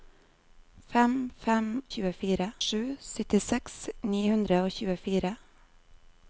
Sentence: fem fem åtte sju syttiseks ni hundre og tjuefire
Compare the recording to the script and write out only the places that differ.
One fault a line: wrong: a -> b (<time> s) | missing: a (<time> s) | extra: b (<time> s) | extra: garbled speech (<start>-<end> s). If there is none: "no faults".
wrong: åtte -> tjuefire (1.9 s)